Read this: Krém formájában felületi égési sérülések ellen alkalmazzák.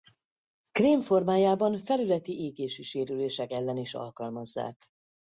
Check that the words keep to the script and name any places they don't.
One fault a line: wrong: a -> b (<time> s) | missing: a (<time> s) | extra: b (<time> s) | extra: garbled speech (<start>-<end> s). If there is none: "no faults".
extra: is (3.8 s)